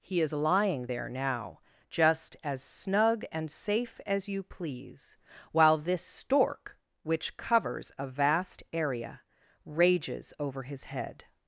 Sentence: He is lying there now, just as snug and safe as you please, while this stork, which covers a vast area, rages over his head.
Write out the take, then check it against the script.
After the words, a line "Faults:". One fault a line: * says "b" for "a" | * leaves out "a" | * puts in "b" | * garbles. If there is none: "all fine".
He is lying there now, just as snug and safe as you please, while this stork, which covers a vast area, rages over his head.
Faults:
all fine